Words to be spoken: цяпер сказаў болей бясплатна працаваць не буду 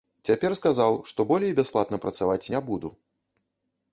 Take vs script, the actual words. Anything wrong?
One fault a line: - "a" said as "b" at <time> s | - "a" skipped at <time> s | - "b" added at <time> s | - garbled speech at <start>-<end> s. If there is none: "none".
- "што" added at 1.1 s